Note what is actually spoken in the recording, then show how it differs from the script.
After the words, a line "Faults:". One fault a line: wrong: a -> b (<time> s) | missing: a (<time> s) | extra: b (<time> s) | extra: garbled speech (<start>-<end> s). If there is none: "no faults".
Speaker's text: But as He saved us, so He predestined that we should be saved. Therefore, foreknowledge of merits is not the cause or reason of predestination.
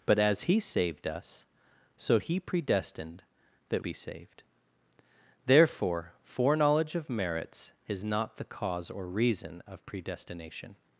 But as He saved us, so He predestined that be saved. Therefore, foreknowledge of merits is not the cause or reason of predestination.
Faults:
missing: we should (3.8 s)